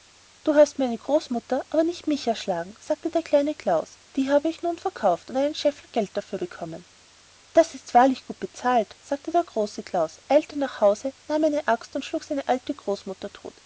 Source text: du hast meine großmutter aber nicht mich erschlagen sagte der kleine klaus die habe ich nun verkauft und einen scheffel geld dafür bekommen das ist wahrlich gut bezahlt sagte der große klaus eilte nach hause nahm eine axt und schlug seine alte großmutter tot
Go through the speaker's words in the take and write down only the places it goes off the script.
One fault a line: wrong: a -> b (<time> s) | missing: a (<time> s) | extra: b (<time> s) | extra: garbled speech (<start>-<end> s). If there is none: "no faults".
no faults